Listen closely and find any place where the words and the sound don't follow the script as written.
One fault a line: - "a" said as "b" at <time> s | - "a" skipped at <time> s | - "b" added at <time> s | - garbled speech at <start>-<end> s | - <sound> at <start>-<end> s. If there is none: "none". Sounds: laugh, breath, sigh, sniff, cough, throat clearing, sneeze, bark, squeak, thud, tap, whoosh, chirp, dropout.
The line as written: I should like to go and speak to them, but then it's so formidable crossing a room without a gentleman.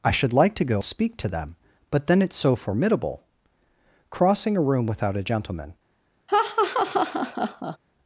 - "and" skipped at 0.8 s
- laugh at 6.3-7.8 s